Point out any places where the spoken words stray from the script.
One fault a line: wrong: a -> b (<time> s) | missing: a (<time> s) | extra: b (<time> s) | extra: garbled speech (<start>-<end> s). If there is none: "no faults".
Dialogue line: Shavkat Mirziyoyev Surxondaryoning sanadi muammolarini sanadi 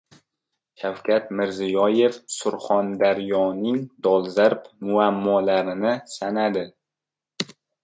wrong: sanadi -> dolzarb (4.1 s)